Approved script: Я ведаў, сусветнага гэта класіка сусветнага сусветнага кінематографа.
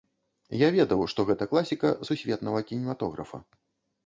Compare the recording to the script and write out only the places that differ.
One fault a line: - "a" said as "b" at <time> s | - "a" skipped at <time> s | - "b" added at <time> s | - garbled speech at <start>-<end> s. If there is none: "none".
- "сусветнага" said as "што" at 1.1 s
- "сусветнага" skipped at 2.6 s